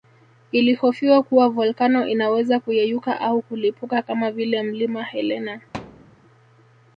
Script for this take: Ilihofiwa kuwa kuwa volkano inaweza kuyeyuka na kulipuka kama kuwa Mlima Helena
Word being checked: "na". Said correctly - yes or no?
no